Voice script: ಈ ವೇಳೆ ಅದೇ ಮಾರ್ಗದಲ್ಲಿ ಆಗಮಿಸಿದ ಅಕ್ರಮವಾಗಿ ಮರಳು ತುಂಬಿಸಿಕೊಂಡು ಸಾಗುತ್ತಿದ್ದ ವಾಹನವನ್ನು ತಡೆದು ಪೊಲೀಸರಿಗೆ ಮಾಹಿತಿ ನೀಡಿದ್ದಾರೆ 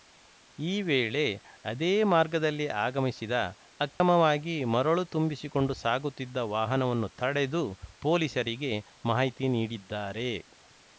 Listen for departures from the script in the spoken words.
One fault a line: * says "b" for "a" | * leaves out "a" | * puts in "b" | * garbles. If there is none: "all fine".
all fine